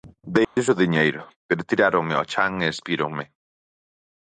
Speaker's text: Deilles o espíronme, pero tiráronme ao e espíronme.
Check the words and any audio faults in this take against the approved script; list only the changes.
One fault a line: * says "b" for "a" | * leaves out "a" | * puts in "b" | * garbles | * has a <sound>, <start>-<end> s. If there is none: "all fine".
* has a dropout, 0.4-0.6 s
* says "diñeiro" for "espíronme"
* puts in "chan"